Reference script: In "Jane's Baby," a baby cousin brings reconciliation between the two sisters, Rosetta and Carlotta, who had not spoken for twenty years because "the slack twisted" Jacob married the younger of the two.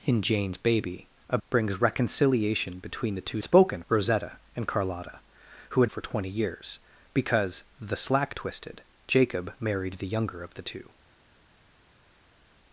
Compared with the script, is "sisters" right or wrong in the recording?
wrong